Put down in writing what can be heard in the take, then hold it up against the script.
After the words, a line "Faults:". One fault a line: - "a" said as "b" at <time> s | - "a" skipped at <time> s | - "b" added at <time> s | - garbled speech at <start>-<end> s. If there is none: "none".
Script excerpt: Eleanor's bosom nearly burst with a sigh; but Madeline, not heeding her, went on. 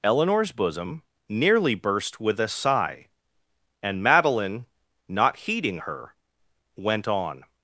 Eleanor's bosom nearly burst with a sigh; and Madeline, not heeding her, went on.
Faults:
- "but" said as "and" at 3.8 s